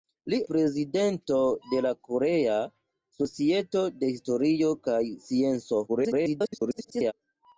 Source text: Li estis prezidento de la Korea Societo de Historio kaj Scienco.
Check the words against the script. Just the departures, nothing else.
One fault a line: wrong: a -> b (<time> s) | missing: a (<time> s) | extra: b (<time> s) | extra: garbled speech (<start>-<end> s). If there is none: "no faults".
missing: estis (0.4 s)
extra: garbled speech (5.9-7.1 s)